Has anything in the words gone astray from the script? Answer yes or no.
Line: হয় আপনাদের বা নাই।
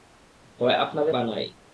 no